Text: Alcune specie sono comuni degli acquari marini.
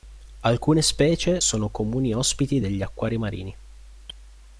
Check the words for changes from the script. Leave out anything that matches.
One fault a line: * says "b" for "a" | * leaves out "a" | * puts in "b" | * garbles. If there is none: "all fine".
* puts in "ospiti"